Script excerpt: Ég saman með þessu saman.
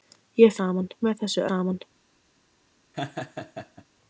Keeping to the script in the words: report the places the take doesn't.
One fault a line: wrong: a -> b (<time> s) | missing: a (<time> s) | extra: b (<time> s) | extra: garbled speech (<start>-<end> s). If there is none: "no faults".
no faults